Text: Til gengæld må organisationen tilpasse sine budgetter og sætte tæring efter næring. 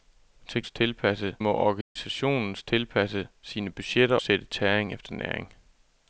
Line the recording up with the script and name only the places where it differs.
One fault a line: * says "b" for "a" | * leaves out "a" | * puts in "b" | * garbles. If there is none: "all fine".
* says "tilpasse" for "gengæld"
* leaves out "og"